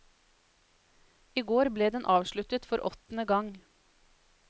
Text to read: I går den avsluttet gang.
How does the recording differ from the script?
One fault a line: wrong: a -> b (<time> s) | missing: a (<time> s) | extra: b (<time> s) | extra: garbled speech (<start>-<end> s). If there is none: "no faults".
extra: ble (1.8 s)
extra: for åttende (2.7 s)